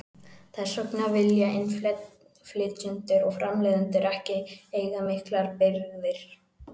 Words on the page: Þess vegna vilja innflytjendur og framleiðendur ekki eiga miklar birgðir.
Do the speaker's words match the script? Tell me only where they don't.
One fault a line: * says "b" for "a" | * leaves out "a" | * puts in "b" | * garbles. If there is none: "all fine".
all fine